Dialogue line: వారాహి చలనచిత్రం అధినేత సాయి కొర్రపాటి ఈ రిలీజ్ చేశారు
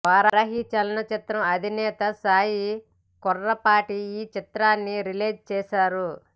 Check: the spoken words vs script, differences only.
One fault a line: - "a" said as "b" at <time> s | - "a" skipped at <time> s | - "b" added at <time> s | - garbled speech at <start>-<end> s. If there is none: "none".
- "చిత్రాన్ని" added at 4.4 s